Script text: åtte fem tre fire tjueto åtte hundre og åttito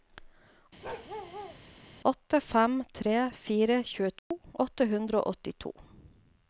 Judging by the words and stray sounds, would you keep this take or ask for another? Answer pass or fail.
fail